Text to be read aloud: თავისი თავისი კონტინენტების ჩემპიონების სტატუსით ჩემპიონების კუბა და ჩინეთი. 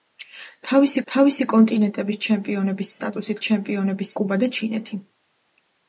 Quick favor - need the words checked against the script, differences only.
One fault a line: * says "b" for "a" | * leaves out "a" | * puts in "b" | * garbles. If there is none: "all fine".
all fine